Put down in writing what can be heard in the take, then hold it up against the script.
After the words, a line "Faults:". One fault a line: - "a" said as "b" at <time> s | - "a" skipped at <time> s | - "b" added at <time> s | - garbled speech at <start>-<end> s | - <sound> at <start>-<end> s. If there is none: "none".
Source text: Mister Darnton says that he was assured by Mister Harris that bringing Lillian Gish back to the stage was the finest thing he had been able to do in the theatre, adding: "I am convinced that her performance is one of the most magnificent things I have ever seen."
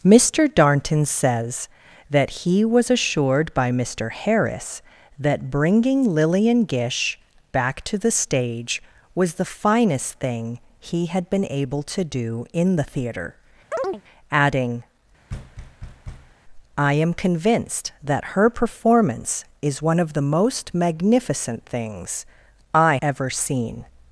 Mister Darnton says that he was assured by Mister Harris that bringing Lillian Gish back to the stage was the finest thing he had been able to do in the theatre, adding: "I am convinced that her performance is one of the most magnificent things I ever seen."
Faults:
- chirp at 13.7-14.0 s
- thud at 15.3-16.4 s
- "have" skipped at 23.0 s